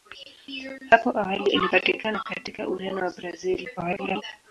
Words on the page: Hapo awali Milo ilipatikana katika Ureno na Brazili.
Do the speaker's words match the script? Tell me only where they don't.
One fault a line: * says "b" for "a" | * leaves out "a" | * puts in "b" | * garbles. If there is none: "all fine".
* leaves out "Milo"
* garbles